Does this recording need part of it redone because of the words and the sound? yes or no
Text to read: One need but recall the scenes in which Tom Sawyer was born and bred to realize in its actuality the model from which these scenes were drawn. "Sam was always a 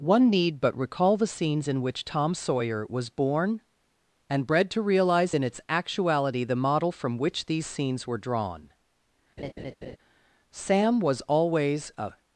yes